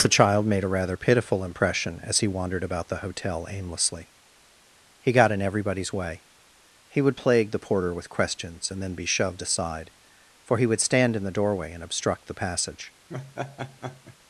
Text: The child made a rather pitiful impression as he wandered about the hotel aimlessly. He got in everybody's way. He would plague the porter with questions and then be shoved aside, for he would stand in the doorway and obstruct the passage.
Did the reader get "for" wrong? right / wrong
right